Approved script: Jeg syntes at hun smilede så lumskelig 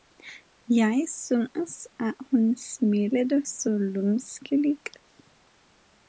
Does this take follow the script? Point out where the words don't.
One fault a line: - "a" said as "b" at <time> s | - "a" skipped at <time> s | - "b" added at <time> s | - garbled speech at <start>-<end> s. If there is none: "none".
none